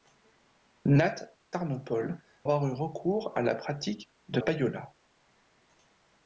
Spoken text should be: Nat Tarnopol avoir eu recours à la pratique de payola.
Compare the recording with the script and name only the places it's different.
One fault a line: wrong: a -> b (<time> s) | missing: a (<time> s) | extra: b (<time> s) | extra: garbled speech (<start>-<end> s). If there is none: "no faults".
no faults